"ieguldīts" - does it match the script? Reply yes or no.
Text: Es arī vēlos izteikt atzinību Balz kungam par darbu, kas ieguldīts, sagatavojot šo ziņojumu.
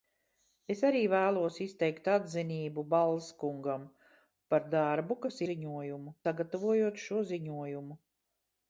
no